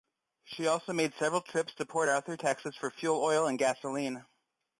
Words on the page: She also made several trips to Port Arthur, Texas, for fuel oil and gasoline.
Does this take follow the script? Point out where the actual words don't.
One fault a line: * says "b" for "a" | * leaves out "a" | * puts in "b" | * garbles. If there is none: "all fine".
all fine